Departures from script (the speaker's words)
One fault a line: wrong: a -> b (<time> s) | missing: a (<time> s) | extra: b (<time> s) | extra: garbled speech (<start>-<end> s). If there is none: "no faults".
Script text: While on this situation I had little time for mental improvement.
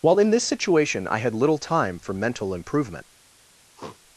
wrong: on -> in (0.2 s)